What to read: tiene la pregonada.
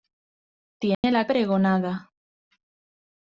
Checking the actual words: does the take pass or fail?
pass